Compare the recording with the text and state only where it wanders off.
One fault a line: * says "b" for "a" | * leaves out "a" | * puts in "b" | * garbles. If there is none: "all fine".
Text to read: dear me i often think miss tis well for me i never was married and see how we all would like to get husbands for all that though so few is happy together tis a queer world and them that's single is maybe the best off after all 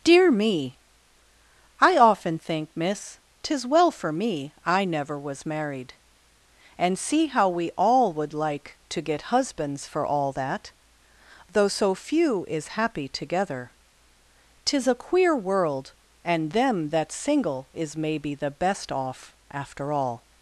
all fine